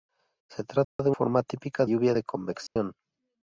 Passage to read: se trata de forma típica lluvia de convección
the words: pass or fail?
pass